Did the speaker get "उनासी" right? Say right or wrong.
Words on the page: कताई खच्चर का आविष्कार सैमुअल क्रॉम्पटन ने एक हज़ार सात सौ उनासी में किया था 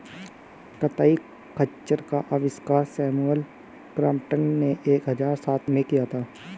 wrong